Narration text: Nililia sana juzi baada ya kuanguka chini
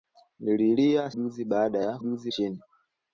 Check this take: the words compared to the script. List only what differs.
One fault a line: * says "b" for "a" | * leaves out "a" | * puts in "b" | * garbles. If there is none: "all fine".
* leaves out "sana"
* says "juzi" for "kuanguka"